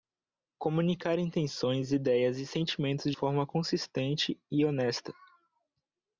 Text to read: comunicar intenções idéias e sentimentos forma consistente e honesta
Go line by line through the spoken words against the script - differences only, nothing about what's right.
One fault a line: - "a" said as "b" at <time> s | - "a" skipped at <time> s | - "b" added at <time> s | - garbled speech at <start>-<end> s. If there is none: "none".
none